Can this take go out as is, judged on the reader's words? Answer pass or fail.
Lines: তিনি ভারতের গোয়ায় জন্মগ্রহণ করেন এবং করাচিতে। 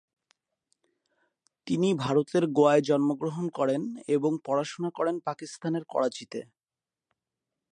fail